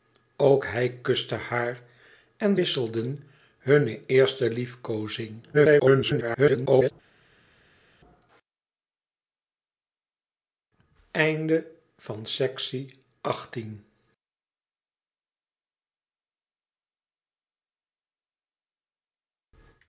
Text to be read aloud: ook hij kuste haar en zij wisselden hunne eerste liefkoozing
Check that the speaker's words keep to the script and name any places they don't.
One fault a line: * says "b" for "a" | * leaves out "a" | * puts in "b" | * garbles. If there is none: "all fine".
* leaves out "zij"
* garbles